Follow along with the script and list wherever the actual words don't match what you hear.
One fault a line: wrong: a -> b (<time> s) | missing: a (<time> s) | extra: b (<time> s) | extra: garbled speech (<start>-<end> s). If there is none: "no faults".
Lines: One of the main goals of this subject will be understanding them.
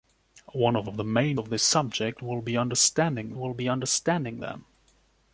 extra: of (0.8 s)
missing: goals (1.4 s)
extra: will be understanding (3.3 s)